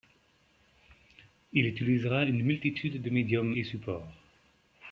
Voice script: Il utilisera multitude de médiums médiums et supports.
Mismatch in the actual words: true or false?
true